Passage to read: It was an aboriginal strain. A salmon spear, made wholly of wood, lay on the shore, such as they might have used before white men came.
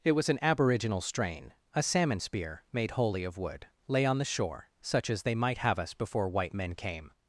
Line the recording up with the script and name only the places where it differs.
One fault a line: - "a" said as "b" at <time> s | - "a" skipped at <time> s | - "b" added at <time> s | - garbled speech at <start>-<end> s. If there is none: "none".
- "used" said as "us" at 5.8 s